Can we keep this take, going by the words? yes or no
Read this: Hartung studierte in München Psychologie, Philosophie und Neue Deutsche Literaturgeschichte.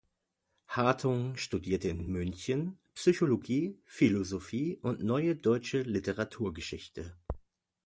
no